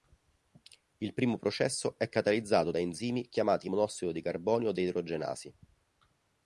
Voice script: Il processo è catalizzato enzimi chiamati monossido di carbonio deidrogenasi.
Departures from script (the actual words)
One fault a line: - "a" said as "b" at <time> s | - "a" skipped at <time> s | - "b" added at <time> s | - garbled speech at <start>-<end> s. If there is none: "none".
- "primo" added at 1.1 s
- "da" added at 2.7 s